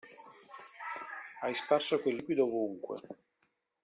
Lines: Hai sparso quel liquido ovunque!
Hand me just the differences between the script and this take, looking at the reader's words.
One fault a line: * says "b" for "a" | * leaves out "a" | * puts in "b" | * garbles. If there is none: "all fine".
all fine